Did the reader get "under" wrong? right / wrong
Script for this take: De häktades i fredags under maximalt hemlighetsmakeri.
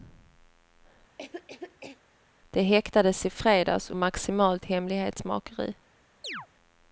wrong